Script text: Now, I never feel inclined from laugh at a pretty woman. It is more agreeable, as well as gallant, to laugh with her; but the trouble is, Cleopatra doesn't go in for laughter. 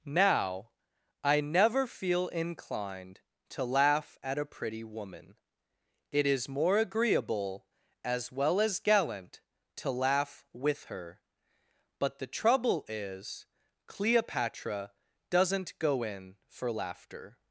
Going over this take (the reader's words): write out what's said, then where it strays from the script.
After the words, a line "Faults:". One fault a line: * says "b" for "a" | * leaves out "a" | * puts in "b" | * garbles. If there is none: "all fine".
Now, I never feel inclined to laugh at a pretty woman. It is more agreeable, as well as gallant, to laugh with her; but the trouble is, Cleopatra doesn't go in for laughter.
Faults:
* says "to" for "from"